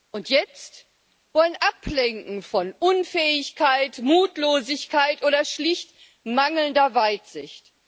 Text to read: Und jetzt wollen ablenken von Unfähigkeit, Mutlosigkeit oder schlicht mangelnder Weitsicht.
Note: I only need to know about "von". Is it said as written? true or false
true